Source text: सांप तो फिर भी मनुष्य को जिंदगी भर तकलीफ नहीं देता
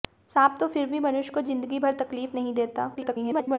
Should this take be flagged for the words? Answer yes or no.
yes